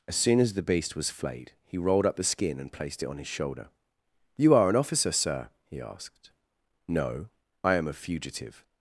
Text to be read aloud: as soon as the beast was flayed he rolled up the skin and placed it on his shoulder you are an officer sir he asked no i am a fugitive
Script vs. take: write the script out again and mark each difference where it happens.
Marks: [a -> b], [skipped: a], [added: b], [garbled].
as soon as the beast was flayed he rolled up the skin and placed it on his shoulder you are an officer sir he asked no i am a fugitive